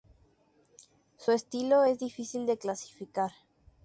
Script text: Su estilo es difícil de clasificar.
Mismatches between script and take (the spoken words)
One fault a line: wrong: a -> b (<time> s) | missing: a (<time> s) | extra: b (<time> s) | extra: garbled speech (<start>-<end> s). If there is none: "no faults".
no faults